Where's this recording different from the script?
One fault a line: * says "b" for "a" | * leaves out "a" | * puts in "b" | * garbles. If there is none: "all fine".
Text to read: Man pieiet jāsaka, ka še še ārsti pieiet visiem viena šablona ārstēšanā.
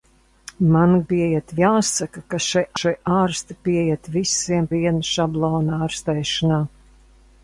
all fine